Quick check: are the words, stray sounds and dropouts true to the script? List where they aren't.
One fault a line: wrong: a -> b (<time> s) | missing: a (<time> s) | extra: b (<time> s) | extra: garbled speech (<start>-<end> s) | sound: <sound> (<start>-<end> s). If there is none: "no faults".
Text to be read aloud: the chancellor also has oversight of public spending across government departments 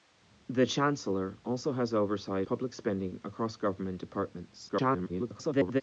missing: of (2.5 s)
extra: garbled speech (4.7-5.8 s)